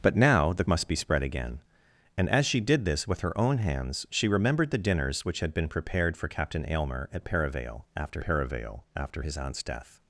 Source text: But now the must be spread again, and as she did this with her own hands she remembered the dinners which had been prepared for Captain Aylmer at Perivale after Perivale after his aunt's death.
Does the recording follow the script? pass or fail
pass